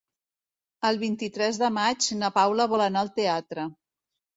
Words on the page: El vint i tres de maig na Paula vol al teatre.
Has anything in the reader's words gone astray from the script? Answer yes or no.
yes